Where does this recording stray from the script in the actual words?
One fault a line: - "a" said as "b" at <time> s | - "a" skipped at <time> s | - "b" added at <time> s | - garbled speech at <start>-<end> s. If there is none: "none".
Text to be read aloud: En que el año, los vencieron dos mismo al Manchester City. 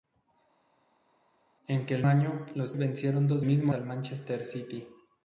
none